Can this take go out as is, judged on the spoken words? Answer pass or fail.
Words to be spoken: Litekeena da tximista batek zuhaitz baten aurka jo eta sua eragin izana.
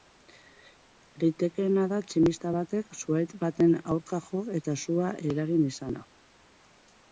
pass